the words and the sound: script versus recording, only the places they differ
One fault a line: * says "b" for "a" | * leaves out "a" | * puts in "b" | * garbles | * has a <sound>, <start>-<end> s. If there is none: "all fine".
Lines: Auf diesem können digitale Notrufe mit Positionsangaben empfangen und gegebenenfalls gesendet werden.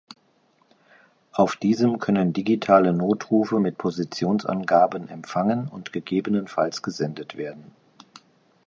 all fine